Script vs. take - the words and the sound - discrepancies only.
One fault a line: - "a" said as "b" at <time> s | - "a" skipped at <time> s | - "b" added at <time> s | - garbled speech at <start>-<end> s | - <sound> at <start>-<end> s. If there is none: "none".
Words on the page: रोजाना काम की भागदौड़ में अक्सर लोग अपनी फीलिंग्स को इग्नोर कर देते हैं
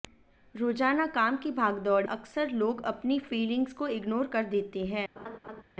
- "में" skipped at 2.0 s
- laugh at 5.2-5.6 s